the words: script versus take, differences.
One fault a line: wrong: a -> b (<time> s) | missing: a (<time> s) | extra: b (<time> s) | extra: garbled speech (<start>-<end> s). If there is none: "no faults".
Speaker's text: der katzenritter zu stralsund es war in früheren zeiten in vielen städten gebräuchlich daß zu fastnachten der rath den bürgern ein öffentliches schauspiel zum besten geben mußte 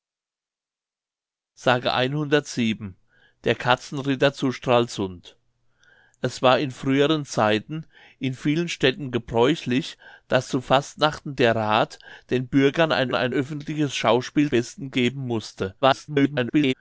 extra: ein (13.1 s)
missing: zum (14.5 s)
extra: garbled speech (15.8-16.7 s)